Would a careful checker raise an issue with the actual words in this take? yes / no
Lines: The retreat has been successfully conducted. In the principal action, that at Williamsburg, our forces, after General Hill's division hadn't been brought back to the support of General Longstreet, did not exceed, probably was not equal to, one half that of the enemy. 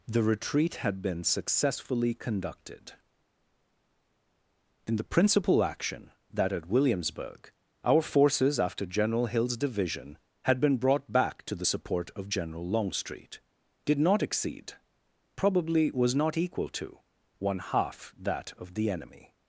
yes